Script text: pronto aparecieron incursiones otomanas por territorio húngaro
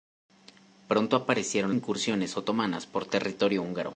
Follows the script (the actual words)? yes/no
yes